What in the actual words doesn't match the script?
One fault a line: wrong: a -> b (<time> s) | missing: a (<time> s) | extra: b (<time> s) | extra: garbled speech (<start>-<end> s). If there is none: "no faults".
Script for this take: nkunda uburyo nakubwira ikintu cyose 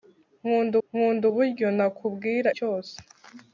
extra: nkunda (0.9 s)
missing: ikintu (2.5 s)